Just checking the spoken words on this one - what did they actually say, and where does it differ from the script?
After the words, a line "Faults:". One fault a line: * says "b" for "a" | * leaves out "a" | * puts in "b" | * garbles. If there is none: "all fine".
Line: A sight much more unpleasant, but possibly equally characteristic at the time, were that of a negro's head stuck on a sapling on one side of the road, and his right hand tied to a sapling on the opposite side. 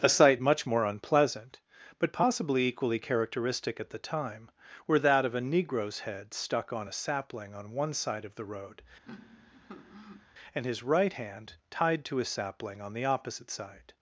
A sight much more unpleasant, but possibly equally characteristic at the time, were that of a negro's head stuck on a sapling on one side of the road, and his right hand tied to a sapling on the opposite side.
Faults:
all fine